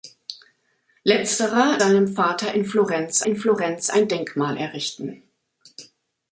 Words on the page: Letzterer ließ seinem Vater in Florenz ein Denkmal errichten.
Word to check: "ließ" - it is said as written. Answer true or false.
false